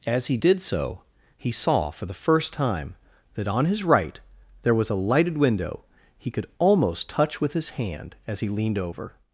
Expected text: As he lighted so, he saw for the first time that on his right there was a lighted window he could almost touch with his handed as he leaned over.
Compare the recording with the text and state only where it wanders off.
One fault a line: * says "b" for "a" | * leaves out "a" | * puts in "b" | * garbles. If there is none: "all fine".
* says "did" for "lighted"
* says "hand" for "handed"